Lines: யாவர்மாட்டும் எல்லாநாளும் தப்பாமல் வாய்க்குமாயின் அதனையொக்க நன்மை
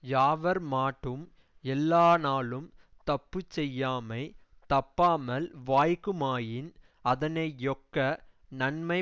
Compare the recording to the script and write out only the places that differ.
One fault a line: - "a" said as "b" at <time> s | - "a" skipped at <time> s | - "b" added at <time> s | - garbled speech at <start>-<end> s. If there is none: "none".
- "தப்புச்செய்யாமை" added at 3.1 s